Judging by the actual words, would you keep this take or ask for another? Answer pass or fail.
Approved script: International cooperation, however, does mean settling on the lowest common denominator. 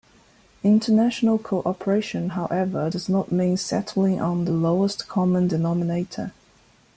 fail